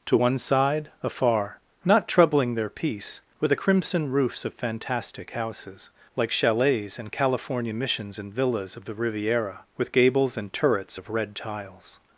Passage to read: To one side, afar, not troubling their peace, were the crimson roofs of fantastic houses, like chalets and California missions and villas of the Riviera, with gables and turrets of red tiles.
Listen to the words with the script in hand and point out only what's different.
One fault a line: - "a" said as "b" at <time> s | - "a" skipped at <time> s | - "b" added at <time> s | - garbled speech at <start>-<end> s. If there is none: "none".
none